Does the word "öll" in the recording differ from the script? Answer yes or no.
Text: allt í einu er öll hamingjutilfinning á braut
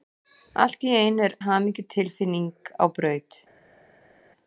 yes